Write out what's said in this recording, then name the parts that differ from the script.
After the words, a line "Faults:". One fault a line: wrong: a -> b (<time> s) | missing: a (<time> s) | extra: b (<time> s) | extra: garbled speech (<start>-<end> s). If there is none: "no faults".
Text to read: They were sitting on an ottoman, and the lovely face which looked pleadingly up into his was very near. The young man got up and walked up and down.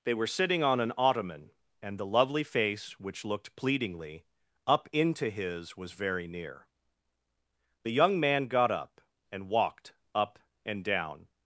They were sitting on an ottoman, and the lovely face which looked pleadingly up into his was very near. The young man got up and walked up and down.
Faults:
no faults